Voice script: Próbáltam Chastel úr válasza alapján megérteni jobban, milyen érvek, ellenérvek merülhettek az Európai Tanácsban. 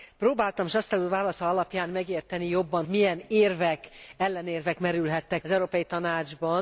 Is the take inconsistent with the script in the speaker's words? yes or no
no